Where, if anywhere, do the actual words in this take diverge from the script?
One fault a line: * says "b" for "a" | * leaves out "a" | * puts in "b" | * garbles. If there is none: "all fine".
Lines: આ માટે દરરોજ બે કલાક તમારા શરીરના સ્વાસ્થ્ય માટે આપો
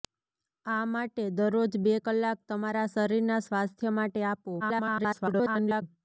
* garbles